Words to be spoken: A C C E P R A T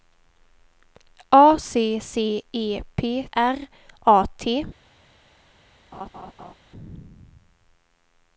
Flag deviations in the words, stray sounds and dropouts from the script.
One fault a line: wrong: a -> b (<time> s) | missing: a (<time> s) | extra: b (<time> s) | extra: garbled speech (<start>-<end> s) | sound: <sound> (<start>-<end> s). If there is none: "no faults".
sound: laugh (5.9-6.5 s)